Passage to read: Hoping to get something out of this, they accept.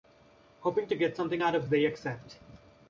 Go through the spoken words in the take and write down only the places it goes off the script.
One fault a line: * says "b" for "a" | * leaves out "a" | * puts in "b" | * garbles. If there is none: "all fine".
* leaves out "this"